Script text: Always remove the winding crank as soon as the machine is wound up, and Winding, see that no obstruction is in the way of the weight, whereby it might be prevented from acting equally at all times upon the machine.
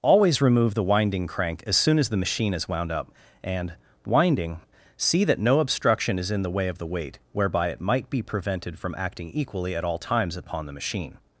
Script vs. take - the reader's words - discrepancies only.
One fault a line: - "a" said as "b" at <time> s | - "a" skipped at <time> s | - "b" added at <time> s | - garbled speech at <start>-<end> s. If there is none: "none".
none